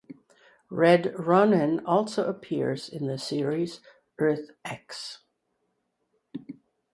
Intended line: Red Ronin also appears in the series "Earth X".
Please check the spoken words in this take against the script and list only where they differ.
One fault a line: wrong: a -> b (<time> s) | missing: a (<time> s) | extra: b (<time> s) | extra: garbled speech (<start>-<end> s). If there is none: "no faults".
no faults